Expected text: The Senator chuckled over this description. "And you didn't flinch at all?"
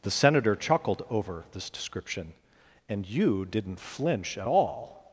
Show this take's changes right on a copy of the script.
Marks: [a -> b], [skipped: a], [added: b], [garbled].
The Senator chuckled over this description. "And you didn't flinch at all?"